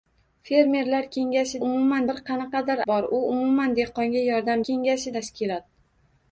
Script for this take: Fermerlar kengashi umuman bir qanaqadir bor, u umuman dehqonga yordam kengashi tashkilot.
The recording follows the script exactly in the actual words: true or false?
true